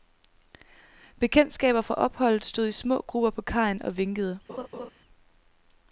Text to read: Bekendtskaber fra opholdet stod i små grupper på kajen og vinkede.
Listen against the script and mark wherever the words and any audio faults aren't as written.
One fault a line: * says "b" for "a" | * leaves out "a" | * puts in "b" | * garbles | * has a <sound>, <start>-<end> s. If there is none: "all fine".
* has a laugh, 4.5-4.9 s